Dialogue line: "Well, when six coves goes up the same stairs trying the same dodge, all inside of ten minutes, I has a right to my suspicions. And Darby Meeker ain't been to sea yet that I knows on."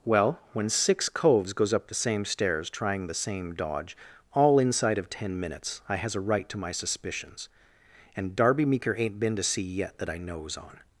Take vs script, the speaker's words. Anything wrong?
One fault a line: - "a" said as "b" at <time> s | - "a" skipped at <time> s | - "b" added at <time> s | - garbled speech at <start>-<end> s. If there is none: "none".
none